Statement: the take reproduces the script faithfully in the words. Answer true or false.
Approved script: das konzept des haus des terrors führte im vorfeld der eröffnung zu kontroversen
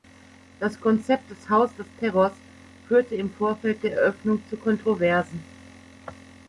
true